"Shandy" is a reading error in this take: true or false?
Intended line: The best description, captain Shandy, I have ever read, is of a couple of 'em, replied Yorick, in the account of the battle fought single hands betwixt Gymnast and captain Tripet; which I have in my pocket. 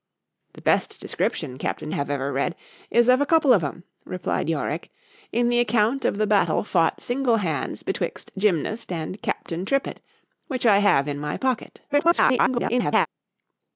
true